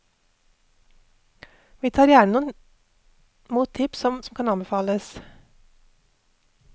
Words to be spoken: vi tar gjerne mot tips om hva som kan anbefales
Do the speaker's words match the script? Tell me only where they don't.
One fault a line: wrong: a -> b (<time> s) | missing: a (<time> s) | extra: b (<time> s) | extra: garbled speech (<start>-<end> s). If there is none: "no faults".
missing: hva (4.2 s)